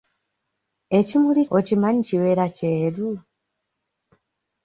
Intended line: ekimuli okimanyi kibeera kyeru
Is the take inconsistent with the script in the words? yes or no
no